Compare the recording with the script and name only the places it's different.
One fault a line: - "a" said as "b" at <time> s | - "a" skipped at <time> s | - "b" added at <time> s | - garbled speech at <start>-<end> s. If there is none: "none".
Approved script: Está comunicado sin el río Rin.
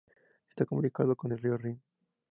- "sin" said as "con" at 1.2 s